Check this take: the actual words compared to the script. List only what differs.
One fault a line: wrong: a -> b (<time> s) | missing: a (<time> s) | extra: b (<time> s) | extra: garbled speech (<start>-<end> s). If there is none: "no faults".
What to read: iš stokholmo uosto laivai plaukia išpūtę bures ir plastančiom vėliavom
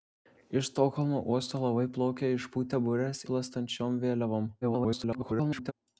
missing: ir (3.2 s)
extra: garbled speech (4.6-5.7 s)